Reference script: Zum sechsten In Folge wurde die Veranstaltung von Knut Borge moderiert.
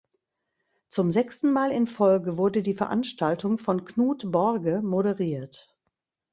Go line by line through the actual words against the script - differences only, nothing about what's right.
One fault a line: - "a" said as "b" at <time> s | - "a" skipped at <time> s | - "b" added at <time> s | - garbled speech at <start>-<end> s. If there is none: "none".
- "Mal" added at 1.5 s